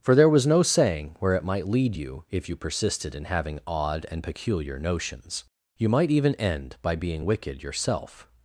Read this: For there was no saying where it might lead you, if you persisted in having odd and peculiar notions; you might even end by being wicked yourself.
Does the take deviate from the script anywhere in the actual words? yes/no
no